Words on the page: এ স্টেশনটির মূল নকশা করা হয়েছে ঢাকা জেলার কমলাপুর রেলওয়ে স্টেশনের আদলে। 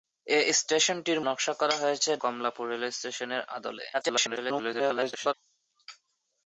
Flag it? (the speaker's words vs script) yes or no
yes